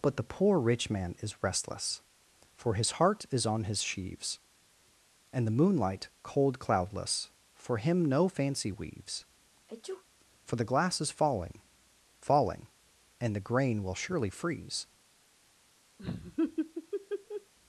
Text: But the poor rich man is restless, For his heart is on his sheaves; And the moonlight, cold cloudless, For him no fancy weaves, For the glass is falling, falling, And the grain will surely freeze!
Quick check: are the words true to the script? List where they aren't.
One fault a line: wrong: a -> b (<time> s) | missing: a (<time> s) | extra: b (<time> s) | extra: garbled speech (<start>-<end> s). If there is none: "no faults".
no faults